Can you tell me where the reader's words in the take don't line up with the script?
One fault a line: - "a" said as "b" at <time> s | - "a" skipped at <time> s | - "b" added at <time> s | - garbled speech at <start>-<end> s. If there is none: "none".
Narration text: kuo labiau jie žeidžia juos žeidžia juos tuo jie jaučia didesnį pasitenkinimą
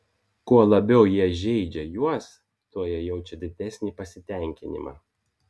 - "žeidžia juos" skipped at 2.3 s